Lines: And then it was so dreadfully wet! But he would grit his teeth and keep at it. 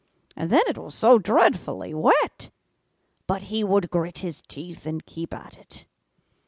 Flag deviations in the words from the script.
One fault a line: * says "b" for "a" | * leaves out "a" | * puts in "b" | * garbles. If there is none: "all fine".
all fine